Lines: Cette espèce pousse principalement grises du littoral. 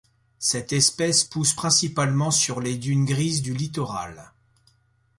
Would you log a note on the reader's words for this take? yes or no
yes